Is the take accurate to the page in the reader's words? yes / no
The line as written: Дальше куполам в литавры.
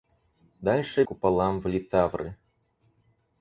yes